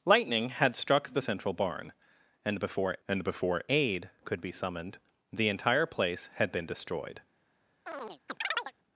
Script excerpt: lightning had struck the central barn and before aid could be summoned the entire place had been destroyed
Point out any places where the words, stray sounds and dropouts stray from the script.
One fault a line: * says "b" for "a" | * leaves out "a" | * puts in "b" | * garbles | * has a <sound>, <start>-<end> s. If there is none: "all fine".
* puts in "and before"
* has a chirp, 7.9-8.7 s